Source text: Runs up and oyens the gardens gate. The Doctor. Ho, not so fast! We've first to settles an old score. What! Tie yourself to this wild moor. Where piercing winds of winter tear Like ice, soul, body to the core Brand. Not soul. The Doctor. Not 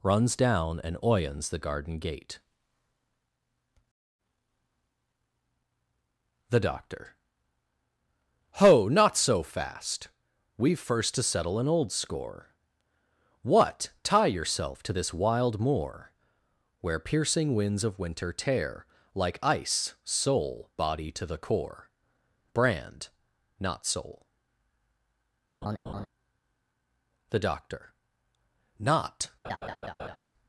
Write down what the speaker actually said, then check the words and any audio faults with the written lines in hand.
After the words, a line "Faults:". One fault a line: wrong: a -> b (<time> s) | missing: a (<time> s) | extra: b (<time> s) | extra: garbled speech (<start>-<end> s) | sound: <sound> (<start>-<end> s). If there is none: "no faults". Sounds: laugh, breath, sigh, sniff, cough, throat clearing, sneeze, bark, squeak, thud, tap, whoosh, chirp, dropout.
Runs down and oyens the garden gate. The Doctor. Ho, not so fast! We've first to settle an old score. What! Tie yourself to this wild moor. Where piercing winds of winter tear Like ice, soul, body to the core Brand. Not soul. The Doctor. Not
Faults:
wrong: up -> down (0.3 s)
wrong: gardens -> garden (1.6 s)
wrong: settles -> settle (11.2 s)
sound: laugh (25.6-26.1 s)
sound: laugh (29.4-30.2 s)